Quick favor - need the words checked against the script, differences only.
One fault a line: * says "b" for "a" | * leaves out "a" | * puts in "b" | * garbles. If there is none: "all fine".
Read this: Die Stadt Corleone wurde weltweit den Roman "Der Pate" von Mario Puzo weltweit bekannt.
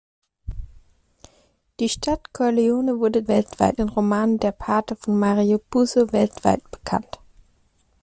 all fine